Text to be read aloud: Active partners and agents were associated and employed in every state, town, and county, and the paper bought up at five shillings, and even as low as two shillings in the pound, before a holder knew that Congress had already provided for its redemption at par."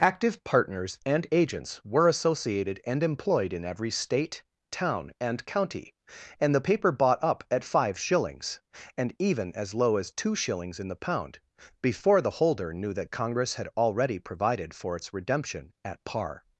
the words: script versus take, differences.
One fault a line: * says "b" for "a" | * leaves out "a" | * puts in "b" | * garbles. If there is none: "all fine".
* says "the" for "a"